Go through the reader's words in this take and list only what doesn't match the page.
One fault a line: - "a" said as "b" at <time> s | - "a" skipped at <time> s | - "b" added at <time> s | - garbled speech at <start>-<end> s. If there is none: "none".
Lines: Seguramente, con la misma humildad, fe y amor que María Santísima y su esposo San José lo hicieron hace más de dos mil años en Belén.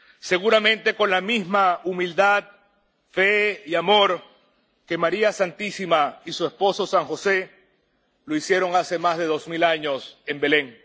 none